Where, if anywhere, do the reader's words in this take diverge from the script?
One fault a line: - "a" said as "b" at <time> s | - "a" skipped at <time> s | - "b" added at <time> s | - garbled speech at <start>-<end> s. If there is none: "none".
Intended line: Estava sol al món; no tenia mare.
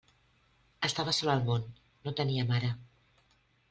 none